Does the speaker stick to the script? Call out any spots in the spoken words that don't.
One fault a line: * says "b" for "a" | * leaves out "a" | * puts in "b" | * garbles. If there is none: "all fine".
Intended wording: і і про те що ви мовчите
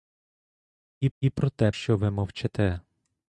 all fine